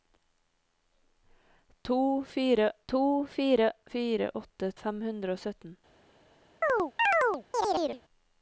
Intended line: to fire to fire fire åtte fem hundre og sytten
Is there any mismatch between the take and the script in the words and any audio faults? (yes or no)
yes